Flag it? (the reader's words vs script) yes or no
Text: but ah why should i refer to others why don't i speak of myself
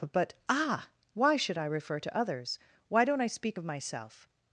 no